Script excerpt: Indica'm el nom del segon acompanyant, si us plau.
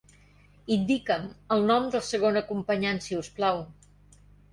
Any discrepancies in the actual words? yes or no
no